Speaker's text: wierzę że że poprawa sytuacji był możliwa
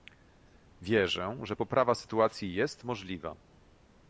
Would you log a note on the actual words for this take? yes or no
yes